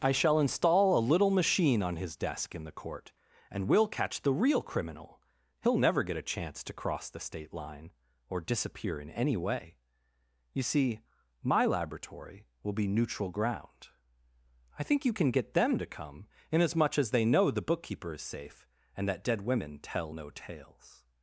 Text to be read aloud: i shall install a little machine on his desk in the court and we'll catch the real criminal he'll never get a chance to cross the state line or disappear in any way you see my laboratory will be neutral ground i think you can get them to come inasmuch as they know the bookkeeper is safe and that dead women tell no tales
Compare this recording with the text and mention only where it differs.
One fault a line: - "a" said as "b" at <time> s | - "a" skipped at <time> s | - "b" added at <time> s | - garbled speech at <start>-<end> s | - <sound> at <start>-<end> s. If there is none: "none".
none